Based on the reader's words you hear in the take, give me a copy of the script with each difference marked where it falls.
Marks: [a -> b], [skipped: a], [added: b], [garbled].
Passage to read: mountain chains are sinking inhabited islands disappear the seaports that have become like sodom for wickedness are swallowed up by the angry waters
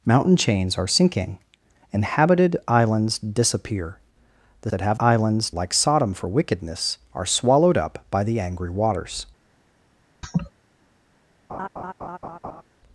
mountain chains are sinking inhabited islands disappear the [skipped: seaports] that have [become -> islands] like sodom for wickedness are swallowed up by the angry waters